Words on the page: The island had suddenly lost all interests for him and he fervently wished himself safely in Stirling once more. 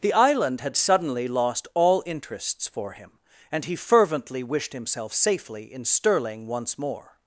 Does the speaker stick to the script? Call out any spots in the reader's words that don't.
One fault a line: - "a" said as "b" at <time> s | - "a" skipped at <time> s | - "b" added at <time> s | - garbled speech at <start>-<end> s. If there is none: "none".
none